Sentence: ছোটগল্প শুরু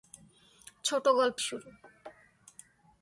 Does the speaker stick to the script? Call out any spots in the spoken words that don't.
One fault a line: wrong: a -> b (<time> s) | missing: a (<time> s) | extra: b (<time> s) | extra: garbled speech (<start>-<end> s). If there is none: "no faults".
no faults